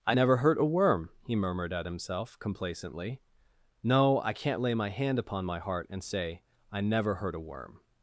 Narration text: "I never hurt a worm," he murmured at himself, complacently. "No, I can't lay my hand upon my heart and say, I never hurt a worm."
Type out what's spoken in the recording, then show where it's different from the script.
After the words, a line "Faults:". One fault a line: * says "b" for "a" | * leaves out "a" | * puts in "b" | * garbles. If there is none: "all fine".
"I never hurt a worm," he murmured at himself, complacently. "No, I can't lay my hand upon my heart and say, I never hurt a worm."
Faults:
all fine